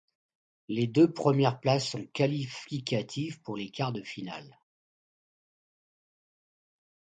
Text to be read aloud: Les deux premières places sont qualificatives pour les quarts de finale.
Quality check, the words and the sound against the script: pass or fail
pass